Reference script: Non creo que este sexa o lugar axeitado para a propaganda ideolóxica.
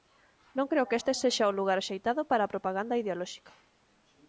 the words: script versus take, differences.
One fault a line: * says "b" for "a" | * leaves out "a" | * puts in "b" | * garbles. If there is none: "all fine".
all fine